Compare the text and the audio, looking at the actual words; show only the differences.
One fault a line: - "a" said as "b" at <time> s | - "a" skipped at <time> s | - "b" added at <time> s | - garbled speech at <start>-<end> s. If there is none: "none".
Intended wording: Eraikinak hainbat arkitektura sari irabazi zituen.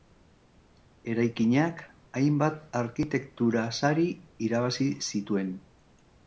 none